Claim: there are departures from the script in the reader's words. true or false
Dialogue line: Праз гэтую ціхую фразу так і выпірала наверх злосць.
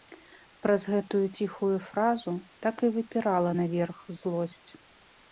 false